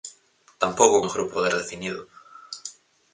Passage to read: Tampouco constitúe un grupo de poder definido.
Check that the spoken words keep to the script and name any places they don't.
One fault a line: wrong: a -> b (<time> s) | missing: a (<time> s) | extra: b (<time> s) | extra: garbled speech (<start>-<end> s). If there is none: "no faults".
missing: constitúe (1.1 s)
missing: de (1.3 s)